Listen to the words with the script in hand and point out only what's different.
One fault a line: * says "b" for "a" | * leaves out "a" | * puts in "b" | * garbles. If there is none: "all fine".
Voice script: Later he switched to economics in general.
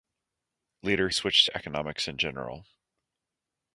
* leaves out "he"